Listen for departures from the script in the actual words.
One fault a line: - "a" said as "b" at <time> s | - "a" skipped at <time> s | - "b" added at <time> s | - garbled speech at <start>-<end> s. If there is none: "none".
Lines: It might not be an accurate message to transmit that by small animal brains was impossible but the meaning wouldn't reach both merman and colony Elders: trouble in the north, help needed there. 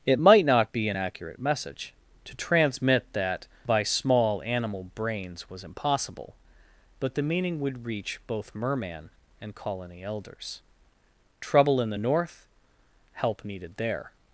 - "wouldn't" said as "would" at 7.6 s